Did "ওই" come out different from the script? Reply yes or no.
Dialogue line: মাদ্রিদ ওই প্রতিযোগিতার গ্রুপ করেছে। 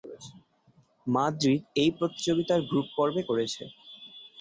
yes